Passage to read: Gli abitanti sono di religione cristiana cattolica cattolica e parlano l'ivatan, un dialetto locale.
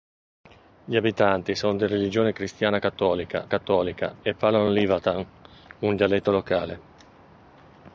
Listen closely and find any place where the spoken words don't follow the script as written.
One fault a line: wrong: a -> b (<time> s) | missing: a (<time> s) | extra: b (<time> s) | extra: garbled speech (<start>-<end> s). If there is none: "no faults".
no faults